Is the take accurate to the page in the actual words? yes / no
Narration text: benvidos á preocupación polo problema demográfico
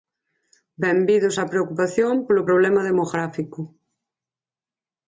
yes